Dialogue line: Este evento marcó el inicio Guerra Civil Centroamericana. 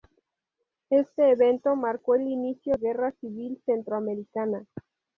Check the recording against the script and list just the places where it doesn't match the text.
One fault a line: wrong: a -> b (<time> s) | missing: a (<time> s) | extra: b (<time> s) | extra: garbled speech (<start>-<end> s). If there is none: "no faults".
no faults